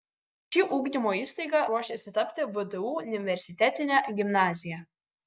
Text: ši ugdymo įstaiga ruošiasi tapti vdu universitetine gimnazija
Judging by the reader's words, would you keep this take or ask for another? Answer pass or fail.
pass